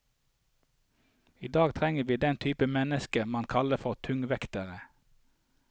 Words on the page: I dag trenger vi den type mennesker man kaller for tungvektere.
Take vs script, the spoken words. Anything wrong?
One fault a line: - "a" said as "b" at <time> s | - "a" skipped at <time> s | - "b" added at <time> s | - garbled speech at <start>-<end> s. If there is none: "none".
none